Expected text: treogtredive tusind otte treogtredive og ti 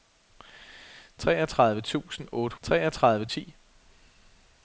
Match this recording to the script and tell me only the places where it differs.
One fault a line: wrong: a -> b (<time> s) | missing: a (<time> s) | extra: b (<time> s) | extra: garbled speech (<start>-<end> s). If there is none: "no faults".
no faults